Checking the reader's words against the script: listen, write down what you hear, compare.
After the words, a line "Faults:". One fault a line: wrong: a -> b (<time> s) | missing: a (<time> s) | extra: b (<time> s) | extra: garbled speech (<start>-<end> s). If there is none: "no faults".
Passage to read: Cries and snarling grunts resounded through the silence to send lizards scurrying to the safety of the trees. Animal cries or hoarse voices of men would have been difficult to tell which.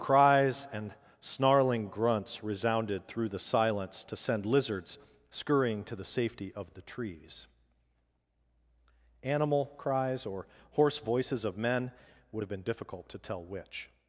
Cries and snarling grunts resounded through the silence to send lizards scurrying to the safety of the trees. Animal cries or hoarse voices of men would have been difficult to tell which.
Faults:
no faults